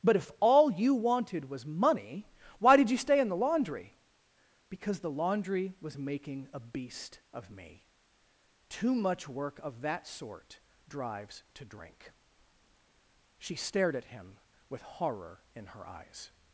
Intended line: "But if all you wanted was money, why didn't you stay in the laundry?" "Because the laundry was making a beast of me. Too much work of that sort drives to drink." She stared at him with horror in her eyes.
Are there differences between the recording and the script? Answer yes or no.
yes